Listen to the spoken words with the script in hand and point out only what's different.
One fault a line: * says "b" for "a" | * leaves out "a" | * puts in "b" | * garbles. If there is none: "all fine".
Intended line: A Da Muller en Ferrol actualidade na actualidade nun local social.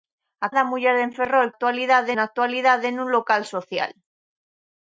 all fine